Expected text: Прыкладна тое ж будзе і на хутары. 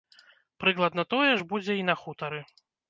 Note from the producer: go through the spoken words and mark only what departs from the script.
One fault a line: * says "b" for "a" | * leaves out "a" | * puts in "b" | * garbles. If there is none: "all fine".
all fine